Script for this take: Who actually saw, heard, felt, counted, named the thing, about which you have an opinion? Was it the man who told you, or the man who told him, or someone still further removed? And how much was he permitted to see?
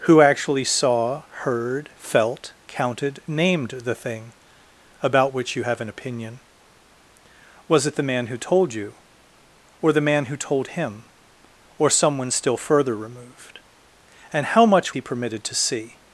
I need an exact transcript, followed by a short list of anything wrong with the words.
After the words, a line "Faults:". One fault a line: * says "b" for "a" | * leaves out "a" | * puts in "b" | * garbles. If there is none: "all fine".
Who actually saw, heard, felt, counted, named the thing, about which you have an opinion? Was it the man who told you, or the man who told him, or someone still further removed? And how much he permitted to see?
Faults:
* leaves out "was"